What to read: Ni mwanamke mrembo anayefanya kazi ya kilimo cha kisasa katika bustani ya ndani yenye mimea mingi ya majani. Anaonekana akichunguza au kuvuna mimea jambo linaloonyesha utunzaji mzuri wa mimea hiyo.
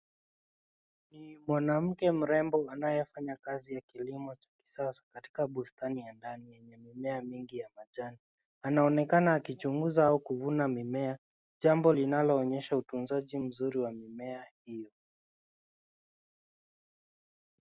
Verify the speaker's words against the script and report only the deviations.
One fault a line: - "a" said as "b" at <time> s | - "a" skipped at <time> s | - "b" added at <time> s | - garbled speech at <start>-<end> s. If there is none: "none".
none